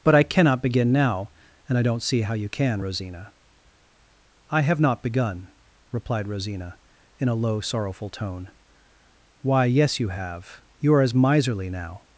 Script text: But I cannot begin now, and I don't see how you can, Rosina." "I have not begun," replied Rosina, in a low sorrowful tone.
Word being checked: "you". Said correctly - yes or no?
yes